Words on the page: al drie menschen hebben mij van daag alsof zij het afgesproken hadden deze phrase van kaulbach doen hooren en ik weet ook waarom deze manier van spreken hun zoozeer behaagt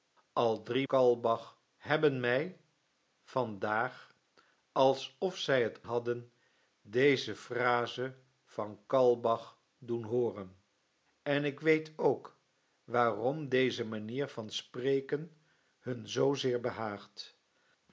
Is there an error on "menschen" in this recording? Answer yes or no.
yes